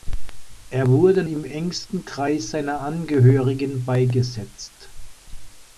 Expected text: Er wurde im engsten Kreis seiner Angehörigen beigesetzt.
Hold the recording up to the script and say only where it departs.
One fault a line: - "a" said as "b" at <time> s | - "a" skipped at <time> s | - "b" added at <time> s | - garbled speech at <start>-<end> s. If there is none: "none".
none